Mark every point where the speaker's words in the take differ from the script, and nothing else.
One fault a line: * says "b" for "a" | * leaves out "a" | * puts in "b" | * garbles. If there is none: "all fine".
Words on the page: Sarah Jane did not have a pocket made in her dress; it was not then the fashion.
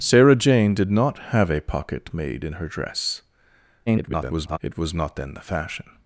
* garbles